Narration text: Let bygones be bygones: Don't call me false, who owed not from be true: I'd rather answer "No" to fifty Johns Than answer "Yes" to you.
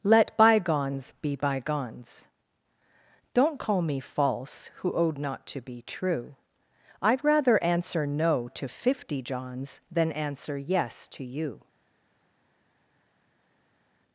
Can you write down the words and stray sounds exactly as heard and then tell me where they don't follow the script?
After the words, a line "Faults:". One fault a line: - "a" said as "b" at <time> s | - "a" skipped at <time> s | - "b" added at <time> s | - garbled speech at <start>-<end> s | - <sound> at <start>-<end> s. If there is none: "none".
Let bygones be bygones: Don't call me false, who owed not to be true: I'd rather answer "No" to fifty Johns Than answer "Yes" to you.
Faults:
- "from" said as "to" at 5.5 s